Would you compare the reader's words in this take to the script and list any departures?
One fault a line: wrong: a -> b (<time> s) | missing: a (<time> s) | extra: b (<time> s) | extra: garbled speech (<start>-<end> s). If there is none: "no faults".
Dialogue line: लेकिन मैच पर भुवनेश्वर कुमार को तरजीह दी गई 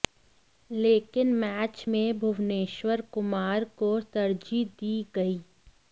wrong: पर -> में (1.9 s)